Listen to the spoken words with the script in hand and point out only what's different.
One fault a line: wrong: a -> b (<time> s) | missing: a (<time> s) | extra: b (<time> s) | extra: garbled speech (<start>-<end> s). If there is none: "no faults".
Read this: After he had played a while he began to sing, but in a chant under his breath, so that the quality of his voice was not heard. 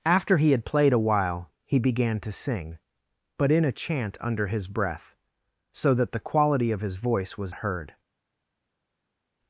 missing: not (7.5 s)